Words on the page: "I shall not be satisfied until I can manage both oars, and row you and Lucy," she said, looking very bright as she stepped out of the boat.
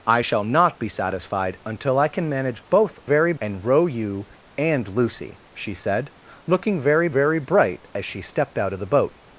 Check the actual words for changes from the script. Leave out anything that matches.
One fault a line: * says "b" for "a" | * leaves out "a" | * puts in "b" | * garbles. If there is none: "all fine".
* says "very" for "oars"
* puts in "very"